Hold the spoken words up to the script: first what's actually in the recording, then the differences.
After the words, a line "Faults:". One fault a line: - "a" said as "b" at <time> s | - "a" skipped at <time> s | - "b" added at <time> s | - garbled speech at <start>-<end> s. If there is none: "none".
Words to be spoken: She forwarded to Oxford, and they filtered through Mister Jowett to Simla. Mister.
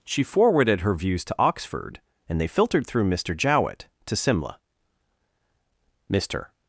She forwarded her views to Oxford, and they filtered through Mister Jowett to Simla. Mister.
Faults:
- "her views" added at 0.8 s